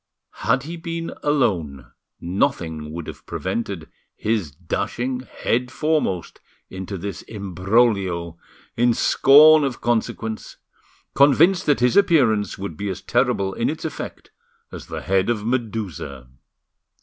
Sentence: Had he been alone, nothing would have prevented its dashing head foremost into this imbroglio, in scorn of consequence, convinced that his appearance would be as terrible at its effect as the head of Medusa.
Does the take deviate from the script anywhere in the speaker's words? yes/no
yes